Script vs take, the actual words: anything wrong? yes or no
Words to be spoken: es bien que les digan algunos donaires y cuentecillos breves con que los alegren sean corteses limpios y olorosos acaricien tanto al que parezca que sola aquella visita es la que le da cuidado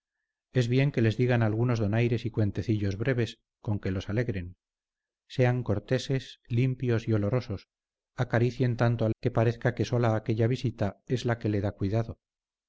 no